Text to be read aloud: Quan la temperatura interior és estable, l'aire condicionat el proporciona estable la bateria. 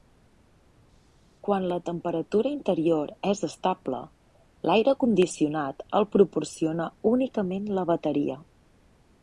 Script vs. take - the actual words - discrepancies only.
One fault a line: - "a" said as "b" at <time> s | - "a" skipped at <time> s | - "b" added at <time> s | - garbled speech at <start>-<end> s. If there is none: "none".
- "estable" said as "únicament" at 7.2 s